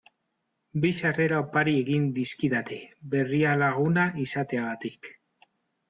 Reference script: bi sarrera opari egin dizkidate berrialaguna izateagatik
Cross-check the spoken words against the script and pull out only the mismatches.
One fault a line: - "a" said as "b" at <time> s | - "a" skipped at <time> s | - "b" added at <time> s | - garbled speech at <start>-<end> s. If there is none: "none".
none